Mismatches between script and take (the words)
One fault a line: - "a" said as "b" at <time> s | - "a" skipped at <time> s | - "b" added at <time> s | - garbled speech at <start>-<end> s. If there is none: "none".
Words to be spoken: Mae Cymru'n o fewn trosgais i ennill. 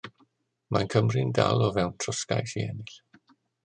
- "dal" added at 1.4 s